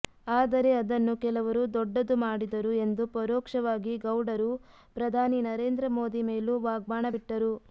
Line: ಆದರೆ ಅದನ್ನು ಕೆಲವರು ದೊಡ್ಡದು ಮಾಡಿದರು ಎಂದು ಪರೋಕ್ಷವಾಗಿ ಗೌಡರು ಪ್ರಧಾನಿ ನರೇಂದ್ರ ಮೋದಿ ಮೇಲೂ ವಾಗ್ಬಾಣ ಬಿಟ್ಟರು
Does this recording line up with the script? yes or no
yes